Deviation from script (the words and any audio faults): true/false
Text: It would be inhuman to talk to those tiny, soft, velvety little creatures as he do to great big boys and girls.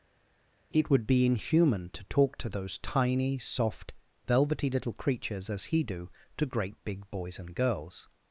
false